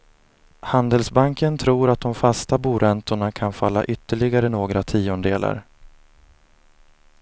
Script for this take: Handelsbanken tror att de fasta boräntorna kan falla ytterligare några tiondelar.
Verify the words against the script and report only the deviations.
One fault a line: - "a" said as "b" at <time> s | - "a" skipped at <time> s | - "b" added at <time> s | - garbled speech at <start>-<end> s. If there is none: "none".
none